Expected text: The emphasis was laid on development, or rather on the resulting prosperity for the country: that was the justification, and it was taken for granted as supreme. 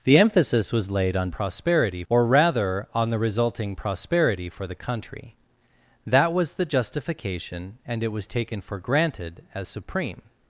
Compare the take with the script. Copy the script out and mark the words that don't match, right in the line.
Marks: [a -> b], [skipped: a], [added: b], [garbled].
The emphasis was laid on [development, -> prosperity] or rather on the resulting prosperity for the country: that was the justification, and it was taken for granted as supreme.